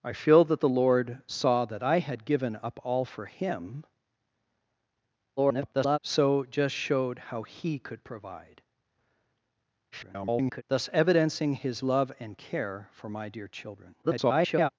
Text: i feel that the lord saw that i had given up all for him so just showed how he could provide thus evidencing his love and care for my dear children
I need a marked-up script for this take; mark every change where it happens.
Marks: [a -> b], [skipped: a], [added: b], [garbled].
i feel that the lord saw that i had given up all for him [garbled] so just showed how he could provide [garbled] thus evidencing his love and care for my dear children [garbled]